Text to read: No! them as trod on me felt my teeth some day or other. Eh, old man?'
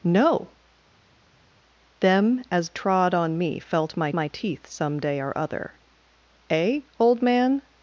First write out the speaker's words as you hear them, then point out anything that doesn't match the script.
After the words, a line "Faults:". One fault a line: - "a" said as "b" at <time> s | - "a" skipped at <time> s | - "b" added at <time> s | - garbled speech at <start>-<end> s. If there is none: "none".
No! them as trod on me felt my my teeth some day or other. Eh, old man?'
Faults:
- "my" added at 4.1 s